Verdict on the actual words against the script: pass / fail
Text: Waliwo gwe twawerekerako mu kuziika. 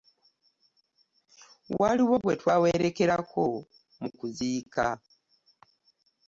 pass